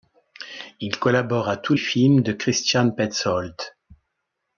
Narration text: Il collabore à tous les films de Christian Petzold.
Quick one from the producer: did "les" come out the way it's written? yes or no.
no